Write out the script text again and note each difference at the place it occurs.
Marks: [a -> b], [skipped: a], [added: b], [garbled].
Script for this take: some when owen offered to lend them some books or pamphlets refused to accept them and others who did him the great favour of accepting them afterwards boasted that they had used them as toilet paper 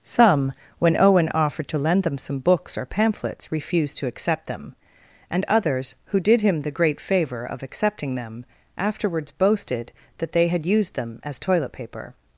some when owen offered to lend them some books or pamphlets refused to accept them and others who did him the great favour of accepting them afterwards boasted that they had used them as toilet paper